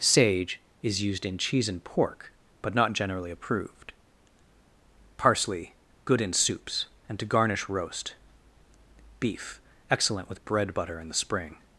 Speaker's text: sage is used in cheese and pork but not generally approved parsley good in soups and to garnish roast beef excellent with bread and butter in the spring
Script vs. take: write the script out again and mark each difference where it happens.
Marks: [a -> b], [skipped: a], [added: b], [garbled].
sage is used in cheese and pork but not generally approved parsley good in soups and to garnish roast beef excellent with bread [skipped: and] butter in the spring